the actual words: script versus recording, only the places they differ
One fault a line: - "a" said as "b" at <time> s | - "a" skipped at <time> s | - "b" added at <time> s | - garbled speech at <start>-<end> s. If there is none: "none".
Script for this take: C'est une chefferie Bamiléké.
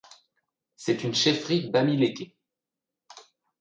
none